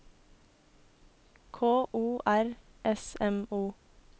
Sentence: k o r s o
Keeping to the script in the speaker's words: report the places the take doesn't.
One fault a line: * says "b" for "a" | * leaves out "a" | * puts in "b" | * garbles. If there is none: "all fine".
* puts in "m"